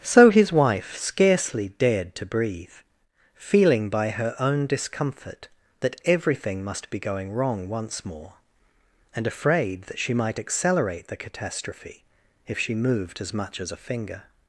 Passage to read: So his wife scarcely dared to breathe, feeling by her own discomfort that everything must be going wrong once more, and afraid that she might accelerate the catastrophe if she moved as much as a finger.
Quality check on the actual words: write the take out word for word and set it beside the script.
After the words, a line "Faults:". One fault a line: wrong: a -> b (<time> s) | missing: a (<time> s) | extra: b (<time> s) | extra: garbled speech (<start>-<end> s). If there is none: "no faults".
So his wife scarcely dared to breathe, feeling by her own discomfort that everything must be going wrong once more, and afraid that she might accelerate the catastrophe if she moved as much as a finger.
Faults:
no faults